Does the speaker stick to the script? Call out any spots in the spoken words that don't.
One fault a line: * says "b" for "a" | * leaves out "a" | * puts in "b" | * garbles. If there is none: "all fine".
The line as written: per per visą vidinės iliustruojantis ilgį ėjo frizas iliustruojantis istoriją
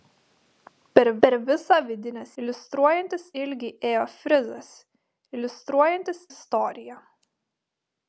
all fine